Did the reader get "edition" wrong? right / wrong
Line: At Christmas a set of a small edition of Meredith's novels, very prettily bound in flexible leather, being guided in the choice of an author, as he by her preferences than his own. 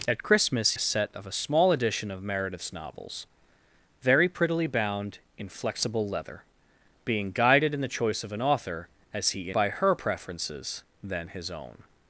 right